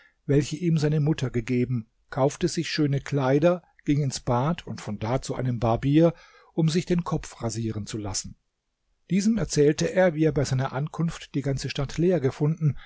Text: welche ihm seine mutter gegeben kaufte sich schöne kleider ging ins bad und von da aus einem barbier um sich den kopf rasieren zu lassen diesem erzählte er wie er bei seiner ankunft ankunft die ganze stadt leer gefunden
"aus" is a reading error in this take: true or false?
true